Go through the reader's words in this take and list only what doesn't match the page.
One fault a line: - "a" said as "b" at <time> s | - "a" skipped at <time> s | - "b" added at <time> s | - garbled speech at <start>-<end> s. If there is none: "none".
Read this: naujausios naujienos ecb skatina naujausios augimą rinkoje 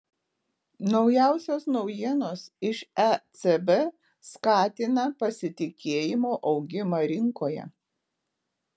- "iš" added at 2.7 s
- "naujausios" said as "pasitikėjimo" at 5.2 s